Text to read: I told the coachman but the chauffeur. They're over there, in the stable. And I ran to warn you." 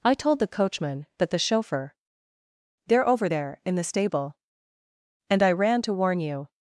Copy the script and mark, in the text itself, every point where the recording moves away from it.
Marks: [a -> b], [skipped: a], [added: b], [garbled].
I told the coachman but the chauffeur. They're over there, in the stable. And I ran to warn you."